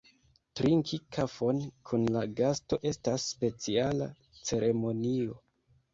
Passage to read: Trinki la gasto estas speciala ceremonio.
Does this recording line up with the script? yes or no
no